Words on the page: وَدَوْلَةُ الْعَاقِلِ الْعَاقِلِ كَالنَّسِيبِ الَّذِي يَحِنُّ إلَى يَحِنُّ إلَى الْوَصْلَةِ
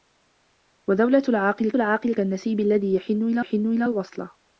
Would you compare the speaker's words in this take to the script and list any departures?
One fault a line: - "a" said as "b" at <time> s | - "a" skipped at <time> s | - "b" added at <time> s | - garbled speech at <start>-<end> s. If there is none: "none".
none